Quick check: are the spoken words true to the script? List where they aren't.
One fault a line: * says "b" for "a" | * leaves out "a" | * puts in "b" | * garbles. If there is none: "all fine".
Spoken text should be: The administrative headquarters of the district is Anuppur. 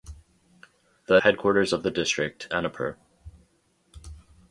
* leaves out "administrative"
* leaves out "is"